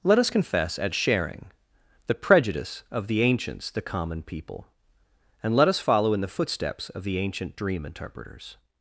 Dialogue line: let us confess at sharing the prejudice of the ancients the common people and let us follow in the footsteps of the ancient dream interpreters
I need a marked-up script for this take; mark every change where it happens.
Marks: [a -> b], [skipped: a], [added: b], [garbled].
let us confess at sharing the prejudice of the ancients the common people and let us follow in the footsteps of the ancient dream interpreters